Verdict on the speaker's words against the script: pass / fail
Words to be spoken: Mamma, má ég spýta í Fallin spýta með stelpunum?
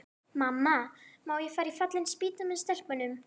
fail